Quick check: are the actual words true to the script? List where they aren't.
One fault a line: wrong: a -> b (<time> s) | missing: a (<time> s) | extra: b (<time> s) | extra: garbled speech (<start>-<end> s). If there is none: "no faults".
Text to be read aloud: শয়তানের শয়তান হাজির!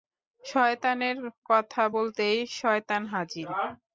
extra: কথা বলতেই (1.5 s)